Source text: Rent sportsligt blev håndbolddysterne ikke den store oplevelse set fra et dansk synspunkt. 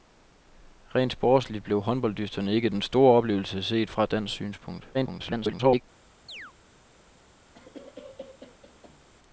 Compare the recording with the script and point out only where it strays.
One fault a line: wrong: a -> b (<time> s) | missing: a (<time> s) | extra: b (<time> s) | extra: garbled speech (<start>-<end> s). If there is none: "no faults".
extra: garbled speech (4.9-5.8 s)